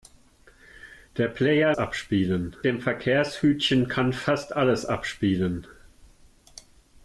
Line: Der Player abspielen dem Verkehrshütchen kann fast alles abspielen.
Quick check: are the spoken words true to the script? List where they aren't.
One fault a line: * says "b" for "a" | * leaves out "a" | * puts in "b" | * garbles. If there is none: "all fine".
all fine